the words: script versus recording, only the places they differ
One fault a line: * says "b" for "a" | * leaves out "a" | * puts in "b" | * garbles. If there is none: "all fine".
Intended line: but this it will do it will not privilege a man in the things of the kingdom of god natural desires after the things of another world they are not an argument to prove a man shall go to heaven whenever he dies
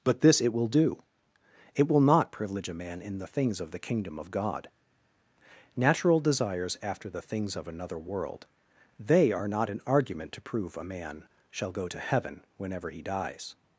all fine